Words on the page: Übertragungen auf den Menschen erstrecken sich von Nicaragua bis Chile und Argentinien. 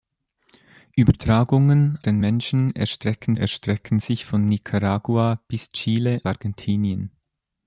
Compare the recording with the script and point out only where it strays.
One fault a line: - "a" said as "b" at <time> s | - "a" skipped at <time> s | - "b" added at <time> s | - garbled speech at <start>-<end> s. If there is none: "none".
- "auf" skipped at 2.0 s
- "erstrecken" added at 3.4 s
- "und" skipped at 6.2 s